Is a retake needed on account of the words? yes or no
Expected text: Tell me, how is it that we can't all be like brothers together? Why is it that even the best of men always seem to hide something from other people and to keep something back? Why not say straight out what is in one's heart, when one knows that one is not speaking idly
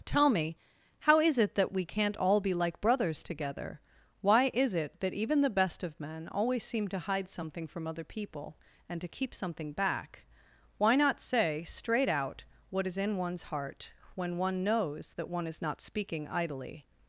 no